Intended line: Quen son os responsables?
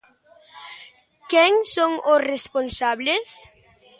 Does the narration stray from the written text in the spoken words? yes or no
no